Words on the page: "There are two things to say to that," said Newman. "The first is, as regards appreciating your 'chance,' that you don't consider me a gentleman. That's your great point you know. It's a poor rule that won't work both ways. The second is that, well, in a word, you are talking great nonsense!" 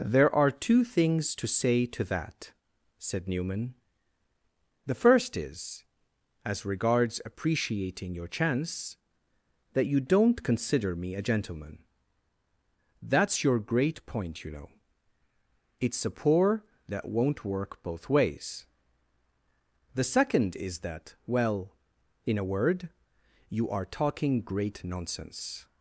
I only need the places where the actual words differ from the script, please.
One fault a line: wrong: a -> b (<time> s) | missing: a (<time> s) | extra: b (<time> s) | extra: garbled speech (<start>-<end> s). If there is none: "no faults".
missing: rule (16.6 s)